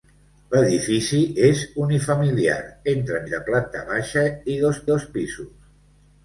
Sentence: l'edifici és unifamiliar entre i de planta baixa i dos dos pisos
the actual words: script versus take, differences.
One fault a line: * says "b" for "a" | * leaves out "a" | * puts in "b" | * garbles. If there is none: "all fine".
all fine